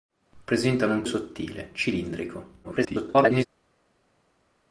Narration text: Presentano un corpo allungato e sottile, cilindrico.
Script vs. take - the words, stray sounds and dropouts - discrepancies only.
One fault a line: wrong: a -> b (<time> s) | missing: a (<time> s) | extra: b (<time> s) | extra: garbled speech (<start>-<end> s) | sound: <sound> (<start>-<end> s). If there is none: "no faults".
missing: corpo allungato (1.0 s)
extra: garbled speech (2.6-3.5 s)